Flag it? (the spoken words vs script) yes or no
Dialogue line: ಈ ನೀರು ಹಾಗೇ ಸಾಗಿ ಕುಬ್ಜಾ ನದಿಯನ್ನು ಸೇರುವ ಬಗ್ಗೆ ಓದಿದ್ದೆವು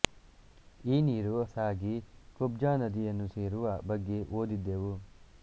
yes